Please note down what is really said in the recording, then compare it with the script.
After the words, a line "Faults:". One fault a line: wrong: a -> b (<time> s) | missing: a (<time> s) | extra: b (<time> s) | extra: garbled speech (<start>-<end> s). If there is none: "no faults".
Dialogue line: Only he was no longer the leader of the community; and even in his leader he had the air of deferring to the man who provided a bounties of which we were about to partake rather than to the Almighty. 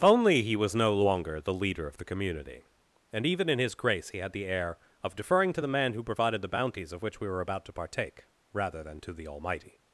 Only he was no longer the leader of the community; and even in his grace he had the air of deferring to the man who provided the bounties of which we were about to partake rather than to the Almighty.
Faults:
wrong: leader -> grace (3.8 s)
wrong: a -> the (6.4 s)